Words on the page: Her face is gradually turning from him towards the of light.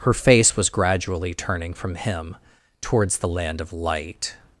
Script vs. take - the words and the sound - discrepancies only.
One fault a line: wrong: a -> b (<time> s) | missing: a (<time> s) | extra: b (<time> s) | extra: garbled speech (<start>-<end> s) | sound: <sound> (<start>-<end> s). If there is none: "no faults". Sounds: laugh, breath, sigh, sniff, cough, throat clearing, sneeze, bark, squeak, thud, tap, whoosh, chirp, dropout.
wrong: is -> was (0.6 s)
extra: land (3.3 s)